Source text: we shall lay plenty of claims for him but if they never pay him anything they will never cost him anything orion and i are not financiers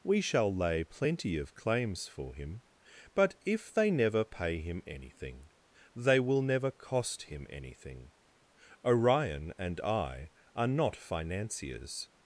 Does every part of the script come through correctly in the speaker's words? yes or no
yes